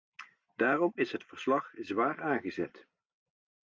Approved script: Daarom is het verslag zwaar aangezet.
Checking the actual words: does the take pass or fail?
pass